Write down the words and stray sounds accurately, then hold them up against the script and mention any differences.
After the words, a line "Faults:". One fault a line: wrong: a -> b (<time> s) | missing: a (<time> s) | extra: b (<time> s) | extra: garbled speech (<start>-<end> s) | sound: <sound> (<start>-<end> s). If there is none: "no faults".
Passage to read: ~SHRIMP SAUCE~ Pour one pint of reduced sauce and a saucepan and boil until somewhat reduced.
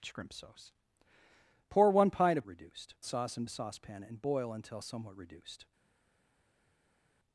~SHRIMP SAUCE~ Pour one pint of reduced sauce and a saucepan and boil until somewhat reduced.
Faults:
no faults